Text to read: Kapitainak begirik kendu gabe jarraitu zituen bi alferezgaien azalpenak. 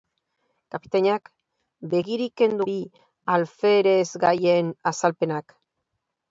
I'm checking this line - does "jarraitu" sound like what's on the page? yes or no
no